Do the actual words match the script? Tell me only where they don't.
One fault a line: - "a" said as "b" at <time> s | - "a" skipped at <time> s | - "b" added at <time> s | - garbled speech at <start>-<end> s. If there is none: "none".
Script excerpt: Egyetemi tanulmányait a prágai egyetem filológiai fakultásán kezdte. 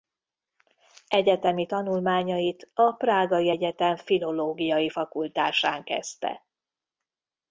none